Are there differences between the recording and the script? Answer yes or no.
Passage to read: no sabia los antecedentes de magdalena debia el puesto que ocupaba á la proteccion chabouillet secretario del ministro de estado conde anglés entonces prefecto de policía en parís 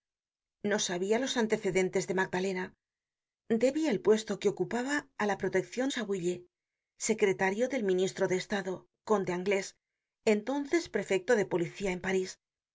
no